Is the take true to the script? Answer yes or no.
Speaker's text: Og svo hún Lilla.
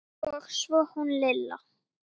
yes